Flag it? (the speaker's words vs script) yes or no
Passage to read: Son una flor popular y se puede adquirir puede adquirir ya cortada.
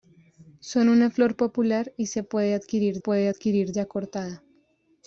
no